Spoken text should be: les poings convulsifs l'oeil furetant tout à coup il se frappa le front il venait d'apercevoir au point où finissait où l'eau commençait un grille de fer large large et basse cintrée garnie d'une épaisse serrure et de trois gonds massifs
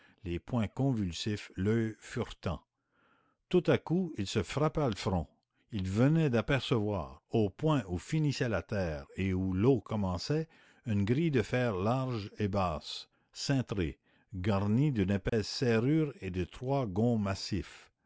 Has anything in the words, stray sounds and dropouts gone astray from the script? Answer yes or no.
yes